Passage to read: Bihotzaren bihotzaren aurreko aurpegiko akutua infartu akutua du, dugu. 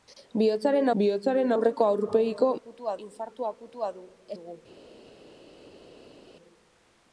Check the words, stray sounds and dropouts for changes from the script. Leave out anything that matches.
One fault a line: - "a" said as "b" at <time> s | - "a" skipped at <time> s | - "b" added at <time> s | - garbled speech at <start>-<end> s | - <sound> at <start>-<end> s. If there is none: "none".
none